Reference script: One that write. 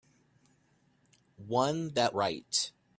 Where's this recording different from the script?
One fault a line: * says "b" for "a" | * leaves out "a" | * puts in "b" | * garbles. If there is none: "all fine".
all fine